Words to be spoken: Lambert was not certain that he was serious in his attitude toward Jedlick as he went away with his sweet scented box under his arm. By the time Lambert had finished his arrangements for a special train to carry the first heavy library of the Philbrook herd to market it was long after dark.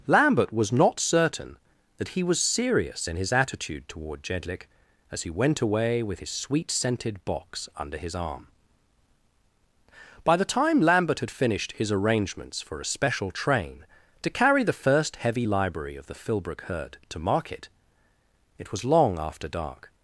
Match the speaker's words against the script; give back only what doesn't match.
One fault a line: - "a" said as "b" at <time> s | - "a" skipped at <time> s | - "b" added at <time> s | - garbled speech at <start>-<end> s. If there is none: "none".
none